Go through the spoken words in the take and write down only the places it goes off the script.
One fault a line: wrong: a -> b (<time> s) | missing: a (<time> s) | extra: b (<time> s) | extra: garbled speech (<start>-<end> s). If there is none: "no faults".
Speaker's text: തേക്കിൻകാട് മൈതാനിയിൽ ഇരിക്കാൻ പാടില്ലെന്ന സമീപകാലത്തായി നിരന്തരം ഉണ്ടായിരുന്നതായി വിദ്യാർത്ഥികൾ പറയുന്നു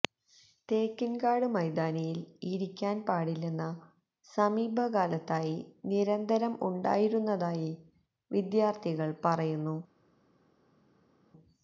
no faults